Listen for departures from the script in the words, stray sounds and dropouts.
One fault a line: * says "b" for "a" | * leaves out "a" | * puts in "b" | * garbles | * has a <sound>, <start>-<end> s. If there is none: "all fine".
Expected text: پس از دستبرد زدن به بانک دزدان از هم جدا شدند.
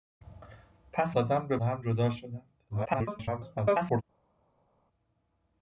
* leaves out "از دستبرد"
* leaves out "بانک دزدان از"
* garbles